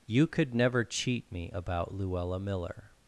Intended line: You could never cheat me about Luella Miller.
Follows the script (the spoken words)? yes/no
yes